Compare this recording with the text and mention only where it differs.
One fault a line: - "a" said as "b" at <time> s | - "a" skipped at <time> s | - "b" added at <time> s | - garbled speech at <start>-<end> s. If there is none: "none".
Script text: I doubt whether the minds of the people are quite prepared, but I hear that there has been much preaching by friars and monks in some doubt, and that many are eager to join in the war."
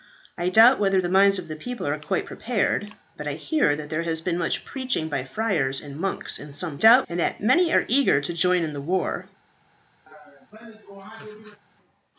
none